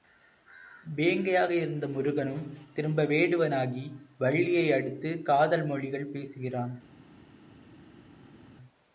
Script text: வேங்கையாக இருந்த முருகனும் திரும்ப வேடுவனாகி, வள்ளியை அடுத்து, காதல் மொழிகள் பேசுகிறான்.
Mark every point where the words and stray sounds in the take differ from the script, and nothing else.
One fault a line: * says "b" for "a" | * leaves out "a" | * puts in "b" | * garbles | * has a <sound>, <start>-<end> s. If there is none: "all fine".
all fine